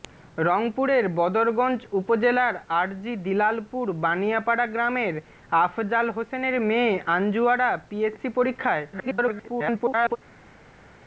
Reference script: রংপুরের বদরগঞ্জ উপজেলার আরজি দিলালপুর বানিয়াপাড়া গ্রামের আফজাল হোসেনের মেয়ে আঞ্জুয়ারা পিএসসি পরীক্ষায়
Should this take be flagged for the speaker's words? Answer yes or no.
yes